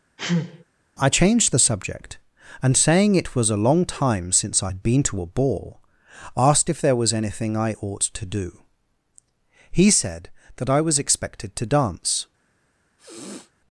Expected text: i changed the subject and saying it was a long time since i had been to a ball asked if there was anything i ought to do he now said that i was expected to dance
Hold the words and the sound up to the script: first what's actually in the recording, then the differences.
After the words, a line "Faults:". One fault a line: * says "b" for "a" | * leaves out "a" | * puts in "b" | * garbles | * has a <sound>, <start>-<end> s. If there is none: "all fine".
i changed the subject and saying it was a long time since i had been to a ball asked if there was anything i ought to do he said that i was expected to dance
Faults:
* has a sneeze, 0.2-0.6 s
* leaves out "now"
* has a sniff, 13.0-13.5 s